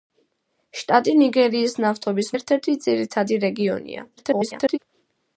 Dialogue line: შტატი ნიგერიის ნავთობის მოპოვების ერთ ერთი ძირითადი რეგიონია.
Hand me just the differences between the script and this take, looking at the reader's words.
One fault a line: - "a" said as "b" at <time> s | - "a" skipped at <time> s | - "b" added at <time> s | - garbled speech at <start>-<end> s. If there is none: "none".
- "მოპოვების" skipped at 2.3 s
- garbled speech at 4.2-4.8 s